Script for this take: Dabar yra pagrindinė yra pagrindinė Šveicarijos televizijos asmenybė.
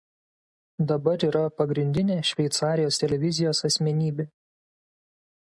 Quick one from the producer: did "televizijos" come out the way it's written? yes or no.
yes